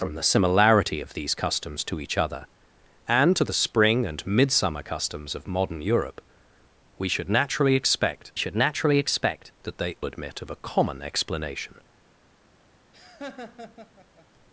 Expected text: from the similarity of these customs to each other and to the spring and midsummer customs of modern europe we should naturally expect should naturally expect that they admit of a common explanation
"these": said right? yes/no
yes